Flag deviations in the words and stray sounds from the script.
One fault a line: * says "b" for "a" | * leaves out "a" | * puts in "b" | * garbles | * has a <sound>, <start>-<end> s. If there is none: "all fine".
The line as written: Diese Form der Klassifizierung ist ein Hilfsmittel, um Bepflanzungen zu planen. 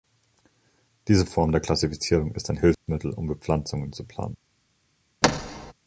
* has a dropout, 2.7-2.9 s
* has a thud, 5.2-5.7 s